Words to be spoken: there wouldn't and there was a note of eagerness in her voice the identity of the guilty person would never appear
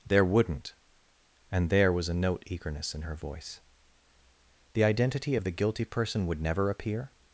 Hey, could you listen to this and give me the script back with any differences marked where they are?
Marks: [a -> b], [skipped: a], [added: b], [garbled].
there wouldn't and there was a note [skipped: of] eagerness in her voice the identity of the guilty person would never appear